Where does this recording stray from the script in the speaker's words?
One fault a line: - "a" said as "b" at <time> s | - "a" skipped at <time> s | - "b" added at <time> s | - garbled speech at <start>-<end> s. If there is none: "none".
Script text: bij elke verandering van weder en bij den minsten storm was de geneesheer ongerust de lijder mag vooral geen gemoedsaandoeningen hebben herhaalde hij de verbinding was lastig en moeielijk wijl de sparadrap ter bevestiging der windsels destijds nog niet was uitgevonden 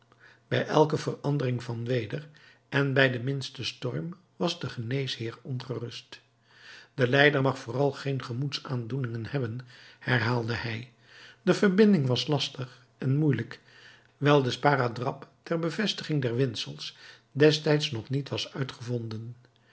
none